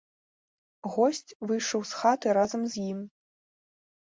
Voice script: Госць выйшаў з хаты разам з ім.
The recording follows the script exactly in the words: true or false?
true